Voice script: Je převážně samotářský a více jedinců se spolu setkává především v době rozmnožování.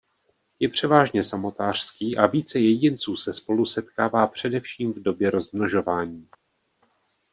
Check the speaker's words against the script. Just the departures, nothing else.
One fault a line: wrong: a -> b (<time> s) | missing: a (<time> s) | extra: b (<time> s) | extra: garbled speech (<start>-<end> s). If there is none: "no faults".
no faults